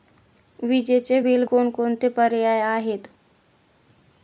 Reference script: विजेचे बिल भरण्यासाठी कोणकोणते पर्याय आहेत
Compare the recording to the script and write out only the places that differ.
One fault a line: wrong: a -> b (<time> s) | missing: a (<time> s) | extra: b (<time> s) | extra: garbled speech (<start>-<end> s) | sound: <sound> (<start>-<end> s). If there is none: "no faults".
missing: भरण्यासाठी (1.4 s)